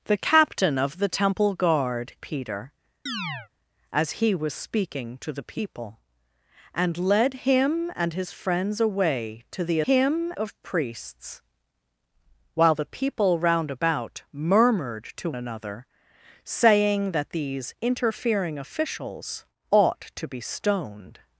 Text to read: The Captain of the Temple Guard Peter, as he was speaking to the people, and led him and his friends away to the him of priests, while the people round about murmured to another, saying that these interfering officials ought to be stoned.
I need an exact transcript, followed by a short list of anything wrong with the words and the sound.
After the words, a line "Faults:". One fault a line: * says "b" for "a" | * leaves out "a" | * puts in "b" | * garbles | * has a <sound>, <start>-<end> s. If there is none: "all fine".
The Captain of the Temple Guard Peter, as he was speaking to the people, and led him and his friends away to the him of priests, while the people round about murmured to another, saying that these interfering officials ought to be stoned.
Faults:
* has a chirp, 3.1-3.5 s